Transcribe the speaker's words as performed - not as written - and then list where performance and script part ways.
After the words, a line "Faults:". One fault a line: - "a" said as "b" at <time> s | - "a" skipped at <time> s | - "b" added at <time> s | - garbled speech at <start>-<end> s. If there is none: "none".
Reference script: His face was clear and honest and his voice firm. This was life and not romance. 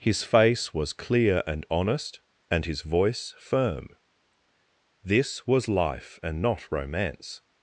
His face was clear and honest and his voice firm. This was life and not romance.
Faults:
none